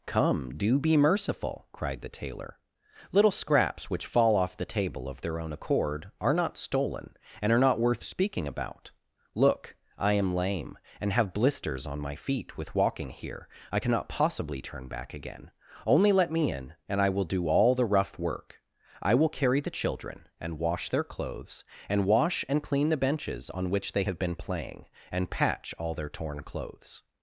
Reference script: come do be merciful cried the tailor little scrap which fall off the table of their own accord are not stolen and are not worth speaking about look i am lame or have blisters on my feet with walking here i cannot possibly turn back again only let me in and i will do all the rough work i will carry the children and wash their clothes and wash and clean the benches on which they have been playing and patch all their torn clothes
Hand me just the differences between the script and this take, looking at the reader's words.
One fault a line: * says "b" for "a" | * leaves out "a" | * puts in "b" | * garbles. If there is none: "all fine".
* says "scraps" for "scrap"
* says "and" for "or"